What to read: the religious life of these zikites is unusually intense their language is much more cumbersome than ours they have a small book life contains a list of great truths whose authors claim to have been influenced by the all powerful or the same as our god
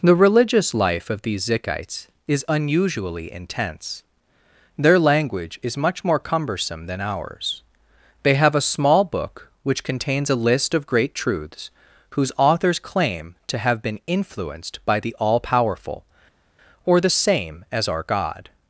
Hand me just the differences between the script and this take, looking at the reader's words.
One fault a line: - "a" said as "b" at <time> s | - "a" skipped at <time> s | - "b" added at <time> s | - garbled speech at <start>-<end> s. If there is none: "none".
- "life" said as "which" at 9.6 s